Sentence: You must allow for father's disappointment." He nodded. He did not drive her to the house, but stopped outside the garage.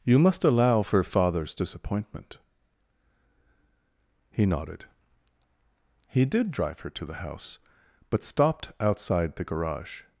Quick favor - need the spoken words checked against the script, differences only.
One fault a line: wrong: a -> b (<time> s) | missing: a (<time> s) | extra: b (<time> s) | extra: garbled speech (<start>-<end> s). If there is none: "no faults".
missing: not (6.5 s)